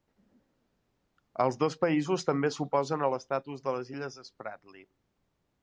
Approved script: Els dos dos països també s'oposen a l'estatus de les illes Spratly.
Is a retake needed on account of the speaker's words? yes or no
yes